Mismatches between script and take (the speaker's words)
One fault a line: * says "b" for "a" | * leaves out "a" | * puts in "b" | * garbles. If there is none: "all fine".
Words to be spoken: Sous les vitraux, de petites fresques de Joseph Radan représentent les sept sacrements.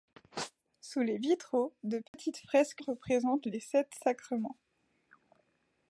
* leaves out "de Joseph Radan"